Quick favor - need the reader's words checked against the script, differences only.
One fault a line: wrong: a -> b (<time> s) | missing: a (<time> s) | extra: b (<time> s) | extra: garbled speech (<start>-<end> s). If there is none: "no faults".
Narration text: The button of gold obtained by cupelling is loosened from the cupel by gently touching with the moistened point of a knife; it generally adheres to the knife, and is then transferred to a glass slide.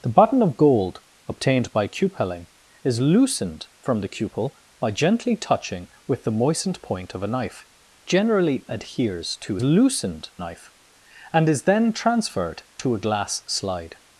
missing: it (7.7 s)
wrong: the -> loosened (9.6 s)